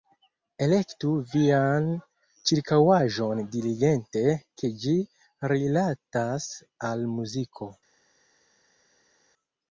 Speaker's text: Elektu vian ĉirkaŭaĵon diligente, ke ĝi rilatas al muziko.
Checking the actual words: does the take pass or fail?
pass